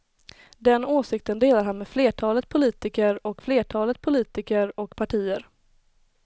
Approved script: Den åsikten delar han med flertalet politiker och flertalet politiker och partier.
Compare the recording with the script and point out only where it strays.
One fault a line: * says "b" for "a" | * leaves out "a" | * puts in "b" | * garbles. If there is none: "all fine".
all fine